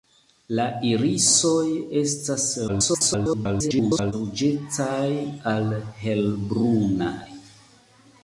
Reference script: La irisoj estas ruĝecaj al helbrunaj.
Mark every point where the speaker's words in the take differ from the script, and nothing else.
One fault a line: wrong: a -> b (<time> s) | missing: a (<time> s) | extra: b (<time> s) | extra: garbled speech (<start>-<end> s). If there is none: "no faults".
extra: garbled speech (2.7-4.1 s)